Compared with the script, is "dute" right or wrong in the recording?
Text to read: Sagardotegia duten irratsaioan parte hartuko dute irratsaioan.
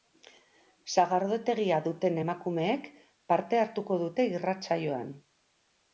right